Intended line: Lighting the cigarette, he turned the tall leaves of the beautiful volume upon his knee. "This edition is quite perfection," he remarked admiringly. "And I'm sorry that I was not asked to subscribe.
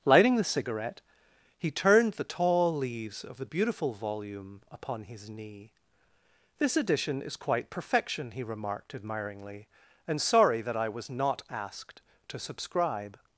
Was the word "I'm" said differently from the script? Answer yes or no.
yes